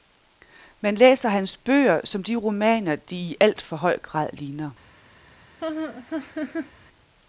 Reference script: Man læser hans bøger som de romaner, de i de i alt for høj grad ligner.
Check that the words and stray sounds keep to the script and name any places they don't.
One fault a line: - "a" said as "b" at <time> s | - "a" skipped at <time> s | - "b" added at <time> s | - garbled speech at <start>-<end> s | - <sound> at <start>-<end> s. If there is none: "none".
- "de i" skipped at 3.4 s
- laugh at 5.6-6.7 s